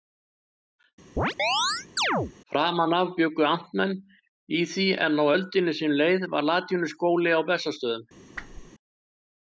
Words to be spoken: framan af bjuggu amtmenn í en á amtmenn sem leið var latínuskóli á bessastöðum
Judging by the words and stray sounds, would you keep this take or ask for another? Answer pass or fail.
fail